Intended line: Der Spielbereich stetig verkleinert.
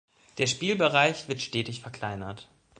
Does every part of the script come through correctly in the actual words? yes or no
no